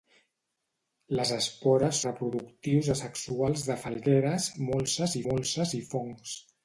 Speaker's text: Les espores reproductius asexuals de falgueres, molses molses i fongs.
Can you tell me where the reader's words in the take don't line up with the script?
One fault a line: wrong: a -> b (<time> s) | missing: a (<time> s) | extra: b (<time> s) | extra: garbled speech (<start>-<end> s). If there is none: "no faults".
no faults